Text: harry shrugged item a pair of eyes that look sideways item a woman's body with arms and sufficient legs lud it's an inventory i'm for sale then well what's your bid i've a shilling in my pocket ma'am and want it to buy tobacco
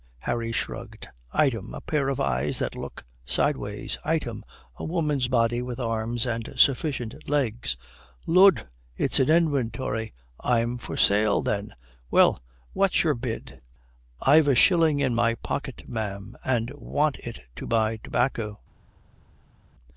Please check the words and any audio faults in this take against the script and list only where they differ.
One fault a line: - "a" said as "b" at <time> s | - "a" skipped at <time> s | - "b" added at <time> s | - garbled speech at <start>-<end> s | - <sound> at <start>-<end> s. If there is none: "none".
none